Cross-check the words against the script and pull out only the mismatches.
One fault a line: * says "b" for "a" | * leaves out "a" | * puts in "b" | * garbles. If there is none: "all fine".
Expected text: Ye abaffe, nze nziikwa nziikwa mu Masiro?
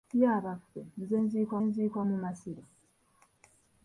all fine